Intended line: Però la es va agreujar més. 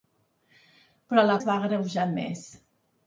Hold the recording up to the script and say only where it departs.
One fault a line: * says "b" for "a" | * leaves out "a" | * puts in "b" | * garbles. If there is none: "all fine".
all fine